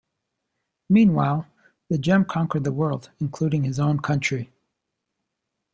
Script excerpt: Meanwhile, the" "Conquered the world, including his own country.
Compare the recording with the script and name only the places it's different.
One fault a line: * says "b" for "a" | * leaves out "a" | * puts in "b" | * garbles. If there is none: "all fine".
* puts in "Gem"